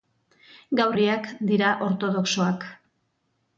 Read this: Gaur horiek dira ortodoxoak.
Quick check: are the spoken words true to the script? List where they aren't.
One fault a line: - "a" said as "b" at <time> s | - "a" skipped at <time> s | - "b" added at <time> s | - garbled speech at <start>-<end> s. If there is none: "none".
none